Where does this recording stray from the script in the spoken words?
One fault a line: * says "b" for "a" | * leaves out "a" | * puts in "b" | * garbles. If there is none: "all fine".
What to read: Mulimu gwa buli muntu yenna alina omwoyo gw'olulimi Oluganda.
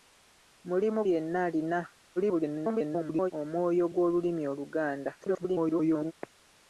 * leaves out "gwa buli muntu"
* garbles
* garbles